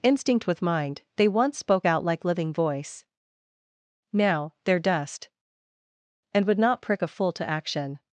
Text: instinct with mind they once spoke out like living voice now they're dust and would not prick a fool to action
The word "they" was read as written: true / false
true